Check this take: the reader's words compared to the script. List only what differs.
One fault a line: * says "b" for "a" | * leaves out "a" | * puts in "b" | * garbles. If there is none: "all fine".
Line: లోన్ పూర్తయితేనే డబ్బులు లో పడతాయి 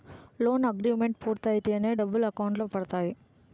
* puts in "అగ్రిమెంట్"
* puts in "అకౌంట్"